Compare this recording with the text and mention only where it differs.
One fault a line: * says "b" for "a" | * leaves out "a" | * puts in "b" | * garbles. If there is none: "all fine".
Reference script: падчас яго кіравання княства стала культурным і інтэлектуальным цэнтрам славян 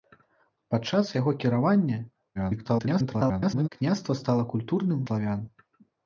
* garbles
* leaves out "і інтэлектуальным цэнтрам"